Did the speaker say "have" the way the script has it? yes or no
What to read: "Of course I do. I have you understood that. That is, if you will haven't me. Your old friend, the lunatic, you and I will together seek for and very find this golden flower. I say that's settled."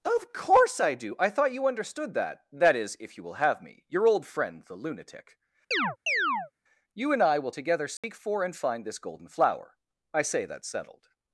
no